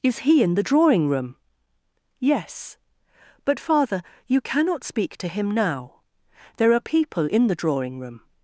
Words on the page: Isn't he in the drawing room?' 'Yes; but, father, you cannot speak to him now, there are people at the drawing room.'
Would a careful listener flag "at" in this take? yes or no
yes